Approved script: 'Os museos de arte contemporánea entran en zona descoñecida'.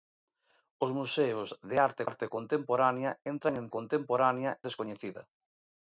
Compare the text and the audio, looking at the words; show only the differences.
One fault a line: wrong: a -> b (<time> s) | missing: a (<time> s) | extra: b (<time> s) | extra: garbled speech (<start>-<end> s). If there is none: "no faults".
extra: arte (2.1 s)
wrong: zona -> contemporánea (3.8 s)